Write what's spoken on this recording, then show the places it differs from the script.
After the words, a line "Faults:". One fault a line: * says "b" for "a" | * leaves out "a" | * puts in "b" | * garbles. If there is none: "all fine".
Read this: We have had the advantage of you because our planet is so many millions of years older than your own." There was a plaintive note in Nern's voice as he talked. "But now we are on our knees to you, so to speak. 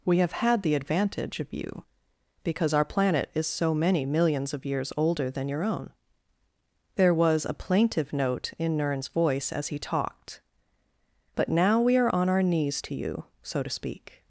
We have had the advantage of you because our planet is so many millions of years older than your own." There was a plaintive note in Nern's voice as he talked. "But now we are on our knees to you, so to speak.
Faults:
all fine